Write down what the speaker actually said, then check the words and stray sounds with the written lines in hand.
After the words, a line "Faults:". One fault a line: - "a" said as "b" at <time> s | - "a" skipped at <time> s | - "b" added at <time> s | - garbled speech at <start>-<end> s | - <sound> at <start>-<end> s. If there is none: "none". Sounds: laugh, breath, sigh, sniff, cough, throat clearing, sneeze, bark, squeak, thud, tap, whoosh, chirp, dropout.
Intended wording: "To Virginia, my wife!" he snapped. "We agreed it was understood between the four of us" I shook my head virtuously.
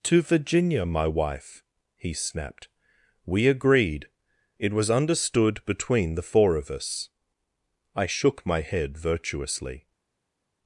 "To Virginia, my wife!" he snapped. "We agreed it was understood between the four of us" I shook my head virtuously.
Faults:
none